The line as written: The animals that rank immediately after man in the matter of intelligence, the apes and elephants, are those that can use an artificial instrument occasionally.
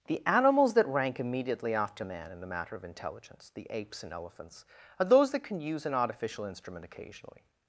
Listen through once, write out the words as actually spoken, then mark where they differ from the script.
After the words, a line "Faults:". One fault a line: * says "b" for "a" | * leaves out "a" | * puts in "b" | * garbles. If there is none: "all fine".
The animals that rank immediately after man in the matter of intelligence, the apes and elephants, are those that can use an artificial instrument occasionally.
Faults:
all fine